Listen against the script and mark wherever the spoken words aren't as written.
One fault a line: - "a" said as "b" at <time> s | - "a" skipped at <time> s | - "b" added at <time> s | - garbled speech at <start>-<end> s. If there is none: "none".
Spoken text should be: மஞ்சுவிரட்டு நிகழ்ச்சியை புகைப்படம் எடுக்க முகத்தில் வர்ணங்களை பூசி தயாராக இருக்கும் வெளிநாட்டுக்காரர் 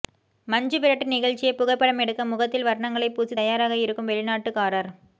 none